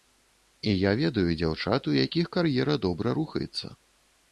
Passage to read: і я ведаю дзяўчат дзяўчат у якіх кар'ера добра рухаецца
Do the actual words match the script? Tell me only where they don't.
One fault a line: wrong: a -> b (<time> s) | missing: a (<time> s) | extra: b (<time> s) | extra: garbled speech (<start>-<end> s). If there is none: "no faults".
missing: дзяўчат (1.9 s)